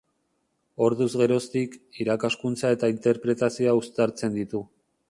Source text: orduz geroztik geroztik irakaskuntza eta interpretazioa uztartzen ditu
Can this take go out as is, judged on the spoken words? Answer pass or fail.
fail